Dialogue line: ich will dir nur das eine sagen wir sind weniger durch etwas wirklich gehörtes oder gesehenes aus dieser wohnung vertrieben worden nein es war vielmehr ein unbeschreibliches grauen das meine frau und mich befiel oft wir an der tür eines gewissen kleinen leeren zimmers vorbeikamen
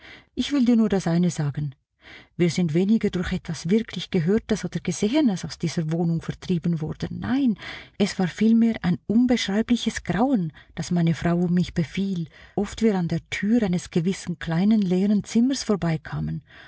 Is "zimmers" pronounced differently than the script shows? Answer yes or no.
no